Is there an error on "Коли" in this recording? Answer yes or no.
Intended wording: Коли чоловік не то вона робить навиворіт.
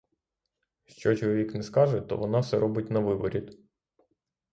yes